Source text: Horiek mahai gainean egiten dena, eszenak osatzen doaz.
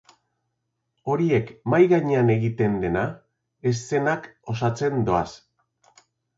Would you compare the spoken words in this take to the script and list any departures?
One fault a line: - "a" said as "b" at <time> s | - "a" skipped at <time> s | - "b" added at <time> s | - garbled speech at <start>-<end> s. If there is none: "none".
none